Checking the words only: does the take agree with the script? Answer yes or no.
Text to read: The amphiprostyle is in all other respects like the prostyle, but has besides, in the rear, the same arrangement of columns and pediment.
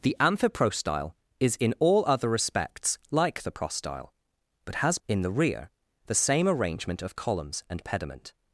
no